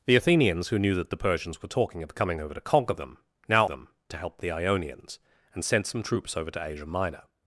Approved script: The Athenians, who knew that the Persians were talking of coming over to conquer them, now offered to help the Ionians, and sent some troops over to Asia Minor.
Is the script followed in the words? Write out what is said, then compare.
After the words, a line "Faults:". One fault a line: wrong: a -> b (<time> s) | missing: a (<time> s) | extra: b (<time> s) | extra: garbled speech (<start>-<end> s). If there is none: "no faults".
The Athenians, who knew that the Persians were talking of coming over to conquer them, now them to help the Ionians, and sent some troops over to Asia Minor.
Faults:
wrong: offered -> them (3.6 s)